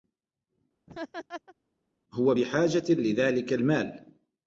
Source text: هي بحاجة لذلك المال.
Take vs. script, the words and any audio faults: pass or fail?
fail